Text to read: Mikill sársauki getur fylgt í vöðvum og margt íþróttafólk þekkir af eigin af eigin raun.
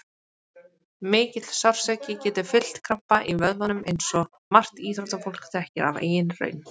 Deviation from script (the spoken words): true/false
true